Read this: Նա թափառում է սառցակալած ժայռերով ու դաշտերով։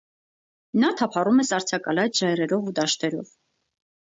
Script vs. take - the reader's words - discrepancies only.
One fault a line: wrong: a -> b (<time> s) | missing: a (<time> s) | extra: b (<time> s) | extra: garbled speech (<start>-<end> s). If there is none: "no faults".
no faults